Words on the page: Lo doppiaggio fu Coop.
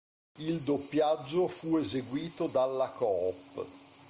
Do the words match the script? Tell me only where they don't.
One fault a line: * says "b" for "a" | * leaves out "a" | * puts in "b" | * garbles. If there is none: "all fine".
* says "Il" for "Lo"
* puts in "eseguito dalla"